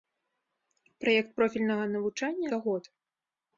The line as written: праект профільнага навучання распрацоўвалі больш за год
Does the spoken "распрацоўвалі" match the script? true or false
false